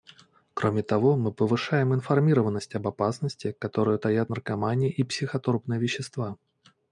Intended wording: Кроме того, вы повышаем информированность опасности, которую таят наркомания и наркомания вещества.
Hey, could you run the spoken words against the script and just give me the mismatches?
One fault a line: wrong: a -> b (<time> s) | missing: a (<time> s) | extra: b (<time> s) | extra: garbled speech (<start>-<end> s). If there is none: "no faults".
wrong: вы -> мы (1.1 s)
extra: об (2.7 s)
wrong: наркомания -> психотропные (5.0 s)